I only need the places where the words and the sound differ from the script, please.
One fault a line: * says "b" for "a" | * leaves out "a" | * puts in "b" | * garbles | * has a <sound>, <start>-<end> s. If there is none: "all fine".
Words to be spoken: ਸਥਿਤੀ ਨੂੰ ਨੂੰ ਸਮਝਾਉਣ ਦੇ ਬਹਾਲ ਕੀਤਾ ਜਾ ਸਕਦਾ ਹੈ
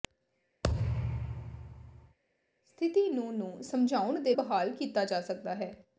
* has a thud, 0.6-2.2 s